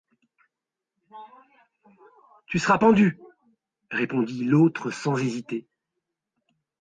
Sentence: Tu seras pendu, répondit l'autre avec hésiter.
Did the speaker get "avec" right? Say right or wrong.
wrong